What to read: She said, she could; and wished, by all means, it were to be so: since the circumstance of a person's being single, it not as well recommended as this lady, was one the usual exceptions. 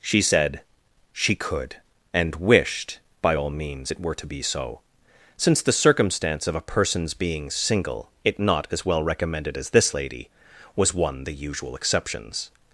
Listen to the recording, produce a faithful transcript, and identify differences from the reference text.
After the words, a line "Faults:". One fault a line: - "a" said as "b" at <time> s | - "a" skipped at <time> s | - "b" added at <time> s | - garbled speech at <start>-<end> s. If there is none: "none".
She said, she could; and wished, by all means, it were to be so: since the circumstance of a person's being single, it not as well recommended as this lady, was one the usual exceptions.
Faults:
none